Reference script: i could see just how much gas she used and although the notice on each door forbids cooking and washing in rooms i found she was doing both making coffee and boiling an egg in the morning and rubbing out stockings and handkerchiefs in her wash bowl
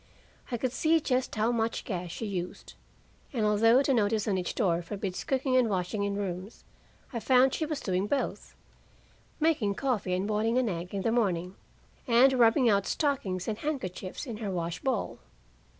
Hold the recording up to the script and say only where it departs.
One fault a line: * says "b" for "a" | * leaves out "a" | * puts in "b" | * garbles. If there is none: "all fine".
all fine